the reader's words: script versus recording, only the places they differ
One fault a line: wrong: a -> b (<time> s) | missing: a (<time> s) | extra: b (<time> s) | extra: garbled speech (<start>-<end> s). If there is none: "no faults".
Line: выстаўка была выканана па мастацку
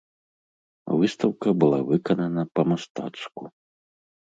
no faults